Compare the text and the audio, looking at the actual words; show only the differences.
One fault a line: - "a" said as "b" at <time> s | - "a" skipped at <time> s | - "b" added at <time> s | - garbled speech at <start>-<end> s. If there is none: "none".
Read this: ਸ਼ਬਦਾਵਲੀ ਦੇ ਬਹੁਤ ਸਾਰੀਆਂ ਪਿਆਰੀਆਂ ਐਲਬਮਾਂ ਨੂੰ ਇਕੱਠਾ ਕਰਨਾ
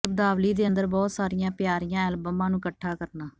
- "ਅੰਦਰ" added at 0.6 s